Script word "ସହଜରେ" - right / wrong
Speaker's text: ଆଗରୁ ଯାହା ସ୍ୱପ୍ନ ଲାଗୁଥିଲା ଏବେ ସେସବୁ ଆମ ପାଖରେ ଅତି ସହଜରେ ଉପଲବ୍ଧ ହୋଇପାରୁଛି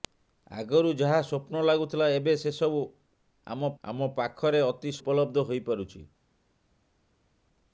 wrong